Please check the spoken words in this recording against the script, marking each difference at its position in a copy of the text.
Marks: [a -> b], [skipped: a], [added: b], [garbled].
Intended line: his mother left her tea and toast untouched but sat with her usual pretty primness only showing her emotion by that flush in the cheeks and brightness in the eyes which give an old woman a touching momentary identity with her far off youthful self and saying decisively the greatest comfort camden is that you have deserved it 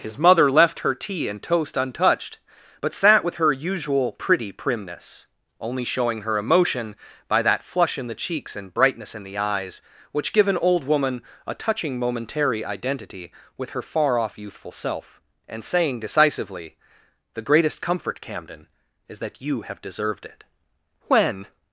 his mother left her tea and toast untouched but sat with her usual pretty primness only showing her emotion by that flush in the cheeks and brightness in the eyes which give an old woman a touching momentary identity with her far off youthful self and saying decisively the greatest comfort camden is that you have deserved it [added: when]